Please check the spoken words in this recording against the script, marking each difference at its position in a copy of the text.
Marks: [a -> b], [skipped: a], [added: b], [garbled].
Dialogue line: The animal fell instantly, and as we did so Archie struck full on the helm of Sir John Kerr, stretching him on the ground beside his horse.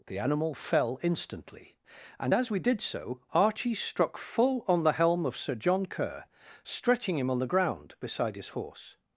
The animal fell instantly, and as we did so Archie struck full on the helm of Sir John Kerr, stretching him on the ground beside his horse.